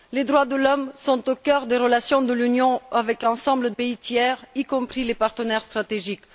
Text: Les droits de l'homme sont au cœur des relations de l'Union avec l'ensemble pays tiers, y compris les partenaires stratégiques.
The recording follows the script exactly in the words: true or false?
true